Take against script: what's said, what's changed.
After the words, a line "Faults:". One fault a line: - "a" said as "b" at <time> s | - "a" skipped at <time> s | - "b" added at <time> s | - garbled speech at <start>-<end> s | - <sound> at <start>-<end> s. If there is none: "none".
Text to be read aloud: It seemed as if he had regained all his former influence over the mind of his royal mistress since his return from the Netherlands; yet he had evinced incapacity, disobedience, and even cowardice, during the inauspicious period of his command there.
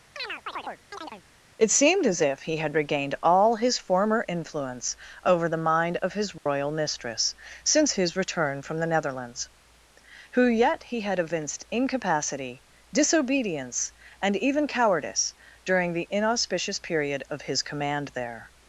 It seemed as if he had regained all his former influence over the mind of his royal mistress since his return from the Netherlands; who yet he had evinced incapacity, disobedience, and even cowardice, during the inauspicious period of his command there.
Faults:
- chirp at 0.2-1.2 s
- dropout at 6.4-6.5 s
- "who" added at 10.3 s